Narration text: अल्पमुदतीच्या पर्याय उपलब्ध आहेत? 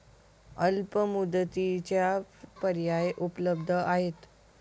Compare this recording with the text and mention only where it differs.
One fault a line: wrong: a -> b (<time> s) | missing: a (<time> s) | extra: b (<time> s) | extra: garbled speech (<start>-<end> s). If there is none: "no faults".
no faults